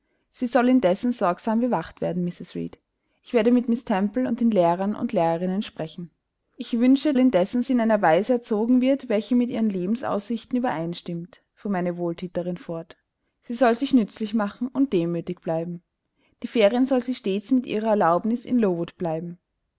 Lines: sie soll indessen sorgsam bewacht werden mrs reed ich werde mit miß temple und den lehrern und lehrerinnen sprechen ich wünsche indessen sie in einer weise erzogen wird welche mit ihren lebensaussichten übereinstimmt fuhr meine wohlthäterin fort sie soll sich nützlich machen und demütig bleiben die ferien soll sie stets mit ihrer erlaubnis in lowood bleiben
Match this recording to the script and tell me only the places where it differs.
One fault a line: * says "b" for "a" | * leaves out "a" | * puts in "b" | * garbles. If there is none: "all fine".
all fine